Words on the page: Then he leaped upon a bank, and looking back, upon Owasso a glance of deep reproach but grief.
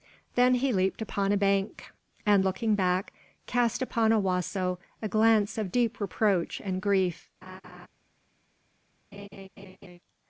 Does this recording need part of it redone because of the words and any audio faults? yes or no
yes